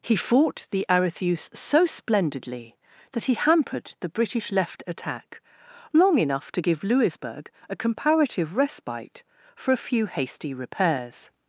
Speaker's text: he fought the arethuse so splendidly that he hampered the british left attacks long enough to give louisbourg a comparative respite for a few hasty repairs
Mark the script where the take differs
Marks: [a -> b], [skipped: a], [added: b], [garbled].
he fought the arethuse so splendidly that he hampered the british left [attacks -> attack] long enough to give louisbourg a comparative respite for a few hasty repairs